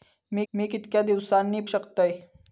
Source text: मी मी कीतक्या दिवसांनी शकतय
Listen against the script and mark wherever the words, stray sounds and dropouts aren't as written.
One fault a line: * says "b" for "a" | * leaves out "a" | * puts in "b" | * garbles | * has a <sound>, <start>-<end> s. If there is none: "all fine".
all fine